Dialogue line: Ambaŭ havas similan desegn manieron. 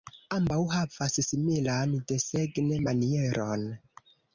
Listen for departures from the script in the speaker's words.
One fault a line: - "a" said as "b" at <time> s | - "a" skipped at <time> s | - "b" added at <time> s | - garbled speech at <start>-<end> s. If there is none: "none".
none